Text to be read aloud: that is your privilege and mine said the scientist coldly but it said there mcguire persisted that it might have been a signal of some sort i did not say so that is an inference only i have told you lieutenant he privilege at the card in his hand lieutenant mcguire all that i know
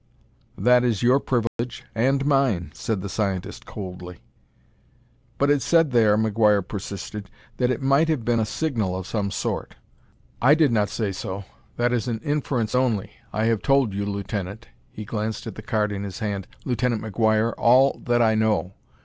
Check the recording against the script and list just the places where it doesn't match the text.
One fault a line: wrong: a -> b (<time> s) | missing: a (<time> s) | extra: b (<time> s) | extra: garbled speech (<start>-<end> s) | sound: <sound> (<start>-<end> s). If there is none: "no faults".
sound: dropout (1.5-1.6 s)
wrong: privilege -> glanced (15.0 s)